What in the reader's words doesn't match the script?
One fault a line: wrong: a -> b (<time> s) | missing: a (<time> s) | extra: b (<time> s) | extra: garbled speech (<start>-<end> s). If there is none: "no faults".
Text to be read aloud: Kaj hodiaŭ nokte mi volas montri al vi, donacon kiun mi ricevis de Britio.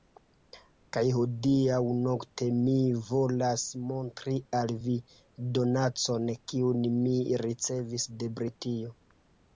no faults